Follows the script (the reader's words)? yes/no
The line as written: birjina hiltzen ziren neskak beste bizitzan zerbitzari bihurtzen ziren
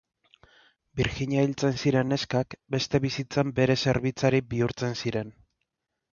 no